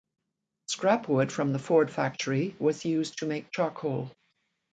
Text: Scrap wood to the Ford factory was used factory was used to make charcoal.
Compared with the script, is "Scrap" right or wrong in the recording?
right